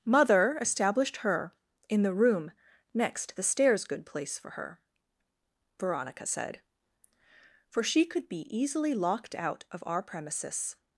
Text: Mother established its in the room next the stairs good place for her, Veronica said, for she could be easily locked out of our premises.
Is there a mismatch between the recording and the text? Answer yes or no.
yes